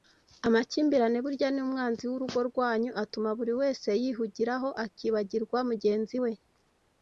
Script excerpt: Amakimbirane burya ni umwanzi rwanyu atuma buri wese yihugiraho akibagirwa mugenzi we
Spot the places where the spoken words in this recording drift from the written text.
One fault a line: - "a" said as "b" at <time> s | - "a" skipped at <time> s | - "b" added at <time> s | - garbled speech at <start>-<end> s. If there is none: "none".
- "w'urugo" added at 2.1 s